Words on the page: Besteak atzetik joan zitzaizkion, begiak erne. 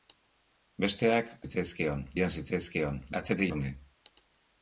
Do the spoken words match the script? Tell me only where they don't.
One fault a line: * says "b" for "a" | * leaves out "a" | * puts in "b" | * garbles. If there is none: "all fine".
* says "zitzaizkion" for "atzetik"
* says "atzetik" for "begiak"